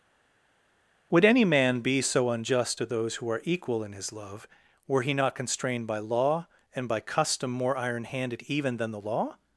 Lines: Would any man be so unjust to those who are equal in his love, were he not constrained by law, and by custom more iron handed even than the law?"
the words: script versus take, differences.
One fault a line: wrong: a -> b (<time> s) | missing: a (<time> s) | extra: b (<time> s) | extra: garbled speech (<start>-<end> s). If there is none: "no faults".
no faults